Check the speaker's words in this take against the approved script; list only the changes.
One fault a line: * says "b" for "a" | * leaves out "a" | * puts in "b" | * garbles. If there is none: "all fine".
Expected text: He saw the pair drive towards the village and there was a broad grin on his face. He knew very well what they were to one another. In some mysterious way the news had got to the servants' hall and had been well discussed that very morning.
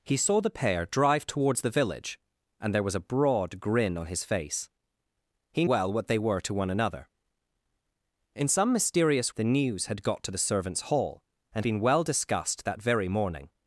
* leaves out "knew very"
* leaves out "way"
* leaves out "had"